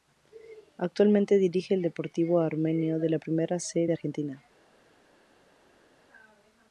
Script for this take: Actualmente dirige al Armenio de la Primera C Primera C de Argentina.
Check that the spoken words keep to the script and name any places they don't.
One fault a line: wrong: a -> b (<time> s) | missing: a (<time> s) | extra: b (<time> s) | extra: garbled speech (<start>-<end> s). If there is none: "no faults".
extra: Deportivo (1.8 s)
missing: Primera C (3.9 s)